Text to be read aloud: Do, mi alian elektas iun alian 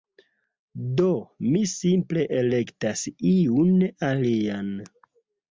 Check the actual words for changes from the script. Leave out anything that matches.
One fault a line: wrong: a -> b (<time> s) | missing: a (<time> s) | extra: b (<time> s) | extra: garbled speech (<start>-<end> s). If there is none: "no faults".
wrong: alian -> simple (1.7 s)